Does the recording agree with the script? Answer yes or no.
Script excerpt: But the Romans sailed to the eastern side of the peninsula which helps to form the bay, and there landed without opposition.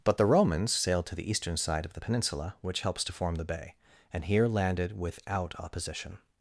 no